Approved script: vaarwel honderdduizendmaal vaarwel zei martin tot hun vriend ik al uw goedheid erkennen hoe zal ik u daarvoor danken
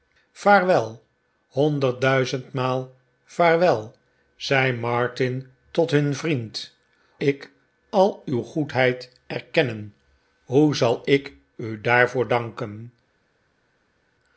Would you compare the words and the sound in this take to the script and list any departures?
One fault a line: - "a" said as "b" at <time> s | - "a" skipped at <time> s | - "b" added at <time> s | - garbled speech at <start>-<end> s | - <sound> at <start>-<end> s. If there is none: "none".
none